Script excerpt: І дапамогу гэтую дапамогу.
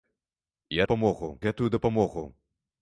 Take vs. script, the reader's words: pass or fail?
pass